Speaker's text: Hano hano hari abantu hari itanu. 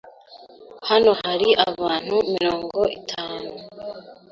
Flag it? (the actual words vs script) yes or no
yes